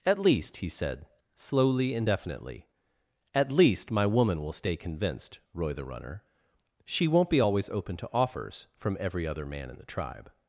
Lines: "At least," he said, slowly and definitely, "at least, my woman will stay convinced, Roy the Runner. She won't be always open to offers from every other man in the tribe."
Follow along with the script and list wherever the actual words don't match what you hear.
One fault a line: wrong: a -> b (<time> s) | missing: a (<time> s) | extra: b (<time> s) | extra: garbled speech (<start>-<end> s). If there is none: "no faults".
no faults